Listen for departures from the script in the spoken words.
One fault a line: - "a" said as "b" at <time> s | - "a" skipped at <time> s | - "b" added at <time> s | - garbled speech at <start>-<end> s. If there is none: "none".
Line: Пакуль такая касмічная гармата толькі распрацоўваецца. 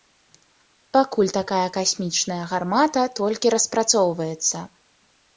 none